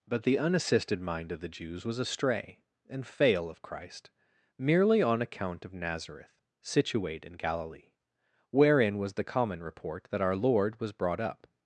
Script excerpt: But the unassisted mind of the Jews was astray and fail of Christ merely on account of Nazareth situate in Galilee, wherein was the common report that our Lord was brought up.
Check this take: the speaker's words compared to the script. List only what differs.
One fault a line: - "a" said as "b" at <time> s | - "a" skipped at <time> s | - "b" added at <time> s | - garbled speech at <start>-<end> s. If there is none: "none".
none